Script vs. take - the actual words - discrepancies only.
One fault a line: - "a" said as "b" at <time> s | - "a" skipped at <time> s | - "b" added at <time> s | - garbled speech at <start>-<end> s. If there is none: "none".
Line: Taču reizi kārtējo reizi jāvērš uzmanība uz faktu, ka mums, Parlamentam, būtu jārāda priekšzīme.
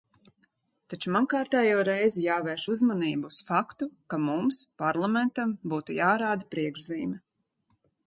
- "reizi" said as "man" at 1.1 s